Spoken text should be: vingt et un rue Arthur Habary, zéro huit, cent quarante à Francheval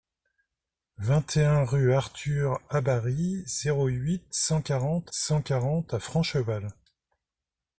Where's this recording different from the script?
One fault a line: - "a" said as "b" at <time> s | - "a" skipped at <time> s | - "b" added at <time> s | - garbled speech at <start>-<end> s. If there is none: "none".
- "cent quarante" added at 5.1 s